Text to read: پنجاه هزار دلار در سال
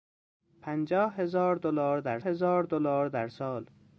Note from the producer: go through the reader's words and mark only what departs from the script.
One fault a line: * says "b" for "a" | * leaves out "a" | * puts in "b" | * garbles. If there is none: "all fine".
* puts in "هزار دلار در"